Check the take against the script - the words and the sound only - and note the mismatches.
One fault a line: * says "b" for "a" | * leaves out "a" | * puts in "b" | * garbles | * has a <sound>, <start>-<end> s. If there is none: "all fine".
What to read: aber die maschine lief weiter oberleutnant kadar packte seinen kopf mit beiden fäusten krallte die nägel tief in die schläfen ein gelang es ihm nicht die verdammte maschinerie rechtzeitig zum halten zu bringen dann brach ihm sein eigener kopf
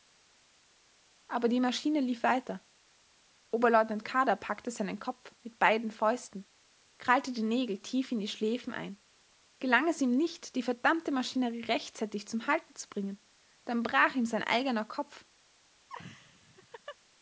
* has a laugh, 15.9-17.0 s